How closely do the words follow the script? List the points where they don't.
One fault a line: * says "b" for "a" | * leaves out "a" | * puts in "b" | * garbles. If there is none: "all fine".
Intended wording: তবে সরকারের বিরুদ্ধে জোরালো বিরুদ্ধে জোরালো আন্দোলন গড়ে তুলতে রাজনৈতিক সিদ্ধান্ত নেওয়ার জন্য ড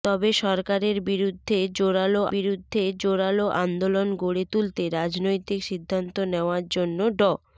all fine